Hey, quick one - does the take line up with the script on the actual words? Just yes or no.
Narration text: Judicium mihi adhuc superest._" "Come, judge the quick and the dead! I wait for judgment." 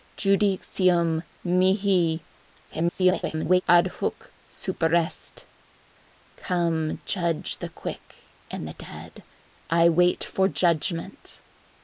no